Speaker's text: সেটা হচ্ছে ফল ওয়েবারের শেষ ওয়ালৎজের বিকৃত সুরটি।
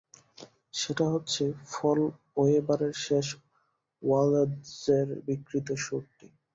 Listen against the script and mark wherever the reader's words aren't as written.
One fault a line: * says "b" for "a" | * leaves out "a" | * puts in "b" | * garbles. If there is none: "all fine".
all fine